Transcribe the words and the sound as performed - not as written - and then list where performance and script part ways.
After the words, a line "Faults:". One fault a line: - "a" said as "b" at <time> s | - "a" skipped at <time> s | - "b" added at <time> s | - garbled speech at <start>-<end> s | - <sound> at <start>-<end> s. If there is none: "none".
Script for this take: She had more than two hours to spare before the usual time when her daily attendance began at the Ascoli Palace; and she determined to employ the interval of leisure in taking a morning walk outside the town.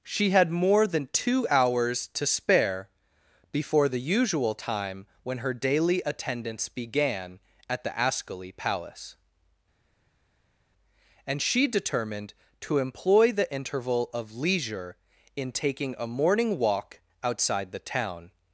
She had more than two hours to spare before the usual time when her daily attendance began at the Ascoli Palace; and she determined to employ the interval of leisure in taking a morning walk outside the town.
Faults:
none